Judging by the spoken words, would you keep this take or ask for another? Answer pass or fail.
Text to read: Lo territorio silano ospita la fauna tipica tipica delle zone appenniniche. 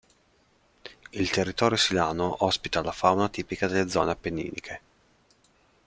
fail